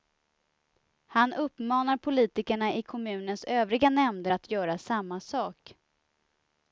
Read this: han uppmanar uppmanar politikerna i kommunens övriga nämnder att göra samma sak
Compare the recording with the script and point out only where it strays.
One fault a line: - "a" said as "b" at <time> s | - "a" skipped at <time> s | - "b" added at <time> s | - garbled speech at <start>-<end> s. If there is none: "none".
- "uppmanar" skipped at 2.0 s